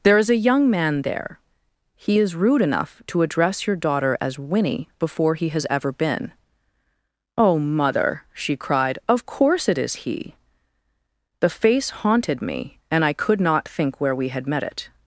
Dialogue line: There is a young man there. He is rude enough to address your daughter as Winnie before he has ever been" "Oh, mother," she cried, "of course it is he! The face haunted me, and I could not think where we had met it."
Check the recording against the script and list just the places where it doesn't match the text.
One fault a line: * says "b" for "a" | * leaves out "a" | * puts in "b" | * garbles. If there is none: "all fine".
all fine